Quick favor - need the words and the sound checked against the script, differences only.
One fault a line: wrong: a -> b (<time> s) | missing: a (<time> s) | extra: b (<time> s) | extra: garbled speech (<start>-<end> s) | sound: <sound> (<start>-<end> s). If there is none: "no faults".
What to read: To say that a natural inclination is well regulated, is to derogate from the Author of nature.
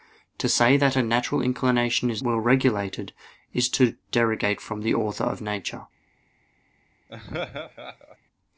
sound: laugh (7.1-8.2 s)